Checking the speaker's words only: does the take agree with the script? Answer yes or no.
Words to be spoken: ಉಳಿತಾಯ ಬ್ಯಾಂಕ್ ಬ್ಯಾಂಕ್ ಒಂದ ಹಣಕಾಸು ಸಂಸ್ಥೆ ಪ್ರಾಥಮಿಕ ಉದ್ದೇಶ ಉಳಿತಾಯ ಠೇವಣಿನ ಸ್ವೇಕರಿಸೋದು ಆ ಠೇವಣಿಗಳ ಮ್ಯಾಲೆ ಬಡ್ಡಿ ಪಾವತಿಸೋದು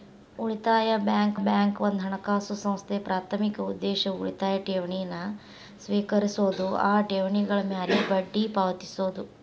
yes